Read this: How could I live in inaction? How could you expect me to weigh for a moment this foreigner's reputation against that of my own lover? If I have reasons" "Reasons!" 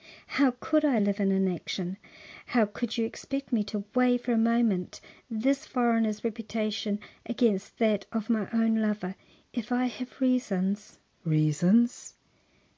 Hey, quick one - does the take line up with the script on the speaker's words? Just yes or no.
yes